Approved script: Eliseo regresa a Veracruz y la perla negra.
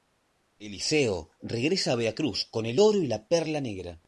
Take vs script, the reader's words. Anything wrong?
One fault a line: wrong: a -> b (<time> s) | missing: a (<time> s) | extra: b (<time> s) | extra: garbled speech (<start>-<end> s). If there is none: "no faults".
extra: con el oro (2.5 s)